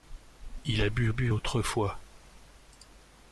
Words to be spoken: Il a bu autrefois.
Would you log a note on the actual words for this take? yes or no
yes